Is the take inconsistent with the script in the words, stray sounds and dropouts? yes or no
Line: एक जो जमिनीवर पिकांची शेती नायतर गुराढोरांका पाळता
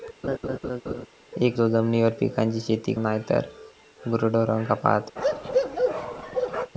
yes